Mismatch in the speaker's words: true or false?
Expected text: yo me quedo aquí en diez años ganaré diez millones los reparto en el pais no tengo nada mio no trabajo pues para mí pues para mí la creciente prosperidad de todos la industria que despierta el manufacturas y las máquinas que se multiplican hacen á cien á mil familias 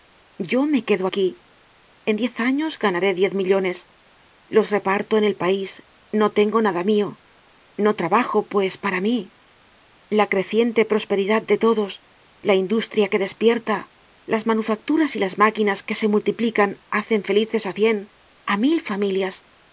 true